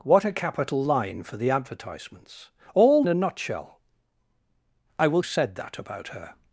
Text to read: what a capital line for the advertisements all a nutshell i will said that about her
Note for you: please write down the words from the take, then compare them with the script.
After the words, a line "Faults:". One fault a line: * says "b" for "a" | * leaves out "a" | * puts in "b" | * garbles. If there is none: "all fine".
what a capital line for the advertisements all a nutshell i will said that about her
Faults:
all fine